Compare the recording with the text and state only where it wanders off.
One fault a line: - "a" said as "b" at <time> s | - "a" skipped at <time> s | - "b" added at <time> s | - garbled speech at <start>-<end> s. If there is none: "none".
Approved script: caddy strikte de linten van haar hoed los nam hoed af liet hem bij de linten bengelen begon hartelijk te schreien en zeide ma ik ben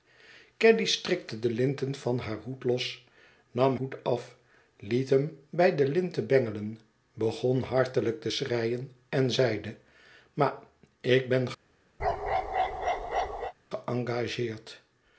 none